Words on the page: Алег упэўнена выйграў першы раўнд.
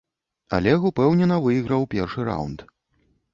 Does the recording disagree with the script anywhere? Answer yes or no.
no